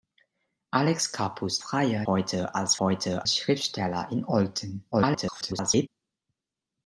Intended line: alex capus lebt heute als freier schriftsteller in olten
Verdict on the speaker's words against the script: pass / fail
fail